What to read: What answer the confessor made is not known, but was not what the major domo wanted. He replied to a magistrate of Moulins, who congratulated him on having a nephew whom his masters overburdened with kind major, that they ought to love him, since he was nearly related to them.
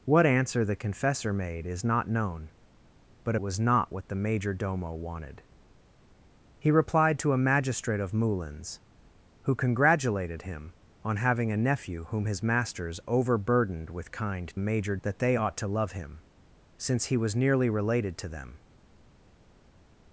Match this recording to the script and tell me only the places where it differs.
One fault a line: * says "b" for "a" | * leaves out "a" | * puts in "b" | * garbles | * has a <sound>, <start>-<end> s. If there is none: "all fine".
all fine